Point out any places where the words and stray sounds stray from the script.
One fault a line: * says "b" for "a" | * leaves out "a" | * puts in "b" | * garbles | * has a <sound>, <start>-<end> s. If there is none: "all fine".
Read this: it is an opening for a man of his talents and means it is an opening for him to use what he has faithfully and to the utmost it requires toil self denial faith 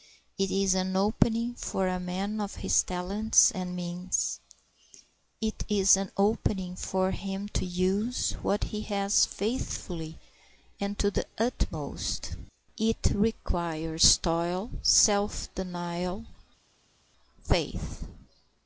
all fine